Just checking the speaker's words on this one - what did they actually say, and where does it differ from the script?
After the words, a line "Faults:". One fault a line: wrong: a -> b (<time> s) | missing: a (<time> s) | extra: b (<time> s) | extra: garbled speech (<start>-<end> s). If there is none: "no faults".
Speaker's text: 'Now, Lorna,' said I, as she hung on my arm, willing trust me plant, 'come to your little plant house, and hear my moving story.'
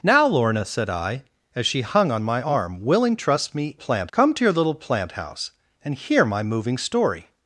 'Now, Lorna,' said I, as she hung on my arm, willing trust me plant, 'come to your little plant house, and hear my moving story.'
Faults:
no faults